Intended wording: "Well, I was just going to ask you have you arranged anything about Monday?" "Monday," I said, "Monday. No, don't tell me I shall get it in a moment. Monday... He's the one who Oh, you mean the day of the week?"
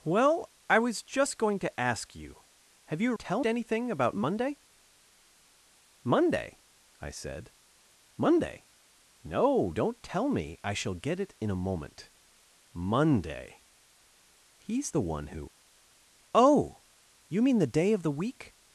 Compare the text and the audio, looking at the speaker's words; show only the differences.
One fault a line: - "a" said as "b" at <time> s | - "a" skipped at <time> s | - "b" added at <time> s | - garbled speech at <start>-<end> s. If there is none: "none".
- "arranged" said as "tell" at 3.2 s